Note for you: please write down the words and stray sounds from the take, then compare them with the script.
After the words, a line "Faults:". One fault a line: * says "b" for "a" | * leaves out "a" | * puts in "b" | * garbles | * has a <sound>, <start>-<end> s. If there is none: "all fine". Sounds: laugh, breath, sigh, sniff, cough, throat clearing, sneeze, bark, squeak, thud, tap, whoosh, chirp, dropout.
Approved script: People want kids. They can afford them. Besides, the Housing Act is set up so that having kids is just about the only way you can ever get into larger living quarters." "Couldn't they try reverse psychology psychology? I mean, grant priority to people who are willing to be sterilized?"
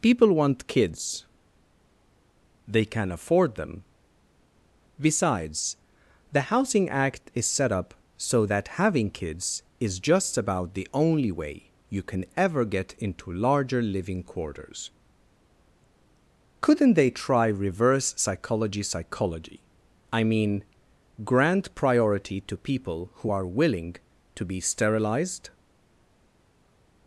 People want kids. They can afford them. Besides, the Housing Act is set up so that having kids is just about the only way you can ever get into larger living quarters." "Couldn't they try reverse psychology psychology? I mean, grant priority to people who are willing to be sterilized?"
Faults:
all fine